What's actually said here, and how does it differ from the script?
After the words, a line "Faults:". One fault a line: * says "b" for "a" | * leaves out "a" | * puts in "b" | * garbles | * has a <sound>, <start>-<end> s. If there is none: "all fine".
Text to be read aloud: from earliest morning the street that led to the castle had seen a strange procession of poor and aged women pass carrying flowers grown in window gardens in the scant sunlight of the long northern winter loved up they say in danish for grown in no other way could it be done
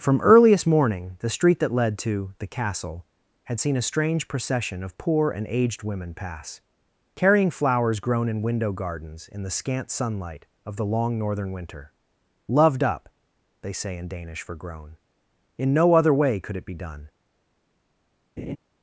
from earliest morning the street that led to the castle had seen a strange procession of poor and aged women pass carrying flowers grown in window gardens in the scant sunlight of the long northern winter loved up they say in danish for grown in no other way could it be done
Faults:
* has a laugh, 18.4-18.6 s